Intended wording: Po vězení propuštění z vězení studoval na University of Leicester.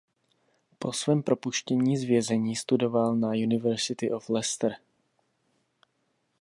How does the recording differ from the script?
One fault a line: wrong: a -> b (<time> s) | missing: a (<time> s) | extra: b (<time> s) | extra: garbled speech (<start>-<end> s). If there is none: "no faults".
wrong: vězení -> svém (0.9 s)